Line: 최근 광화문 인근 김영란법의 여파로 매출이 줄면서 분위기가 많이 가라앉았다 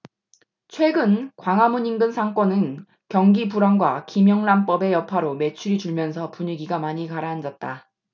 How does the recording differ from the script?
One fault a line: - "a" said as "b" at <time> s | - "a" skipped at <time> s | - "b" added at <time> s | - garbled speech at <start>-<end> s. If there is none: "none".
- "상권은 경기 불황과" added at 2.1 s